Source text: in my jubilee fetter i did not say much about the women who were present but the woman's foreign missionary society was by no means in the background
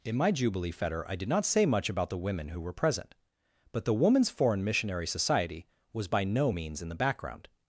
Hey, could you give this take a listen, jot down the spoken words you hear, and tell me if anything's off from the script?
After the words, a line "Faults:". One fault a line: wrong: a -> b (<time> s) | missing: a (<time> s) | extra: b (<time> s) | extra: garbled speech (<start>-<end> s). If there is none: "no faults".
in my jubilee fetter i did not say much about the women who were present but the woman's foreign missionary society was by no means in the background
Faults:
no faults